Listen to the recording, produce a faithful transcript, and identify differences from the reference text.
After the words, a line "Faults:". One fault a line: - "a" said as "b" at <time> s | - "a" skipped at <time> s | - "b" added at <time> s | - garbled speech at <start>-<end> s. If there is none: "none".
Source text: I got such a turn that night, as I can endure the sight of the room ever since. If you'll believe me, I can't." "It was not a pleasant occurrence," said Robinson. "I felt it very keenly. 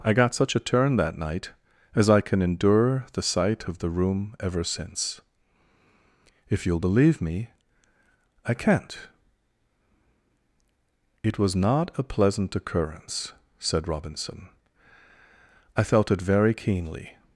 I got such a turn that night, as I can endure the sight of the room ever since. If you'll believe me, I can't." "It was not a pleasant occurrence," said Robinson. "I felt it very keenly.
Faults:
none